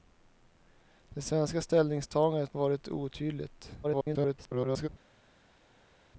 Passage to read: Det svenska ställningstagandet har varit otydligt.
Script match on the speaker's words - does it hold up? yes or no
no